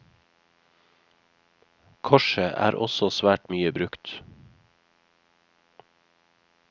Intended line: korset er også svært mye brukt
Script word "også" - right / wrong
right